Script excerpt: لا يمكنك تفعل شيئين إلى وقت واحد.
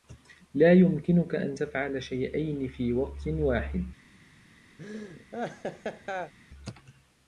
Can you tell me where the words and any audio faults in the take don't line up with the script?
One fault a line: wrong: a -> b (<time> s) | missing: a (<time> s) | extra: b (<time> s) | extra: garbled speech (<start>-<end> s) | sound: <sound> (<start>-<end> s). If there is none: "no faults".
extra: أن (1.4 s)
wrong: إلى -> في (2.7 s)
sound: laugh (4.8-6.3 s)